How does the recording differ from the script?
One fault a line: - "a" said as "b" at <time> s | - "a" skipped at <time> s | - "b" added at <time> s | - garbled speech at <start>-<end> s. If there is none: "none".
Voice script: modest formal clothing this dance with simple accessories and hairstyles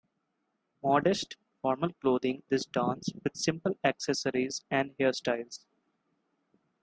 none